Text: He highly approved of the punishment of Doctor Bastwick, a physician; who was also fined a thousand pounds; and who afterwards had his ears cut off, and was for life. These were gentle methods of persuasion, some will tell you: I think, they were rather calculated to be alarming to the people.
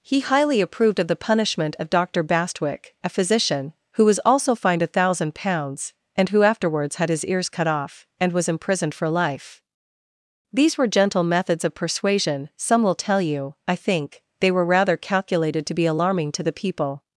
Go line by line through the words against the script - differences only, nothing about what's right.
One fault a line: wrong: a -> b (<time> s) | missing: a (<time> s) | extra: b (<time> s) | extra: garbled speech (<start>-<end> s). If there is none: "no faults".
extra: imprisoned (8.5 s)